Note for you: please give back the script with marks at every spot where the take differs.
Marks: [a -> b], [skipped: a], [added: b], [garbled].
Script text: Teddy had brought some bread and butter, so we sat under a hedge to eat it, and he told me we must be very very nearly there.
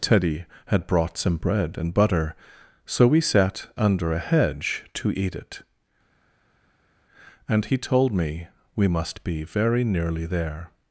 Teddy had brought some bread and butter, so we sat under a hedge to eat it, and he told me we must be very [skipped: very] nearly there.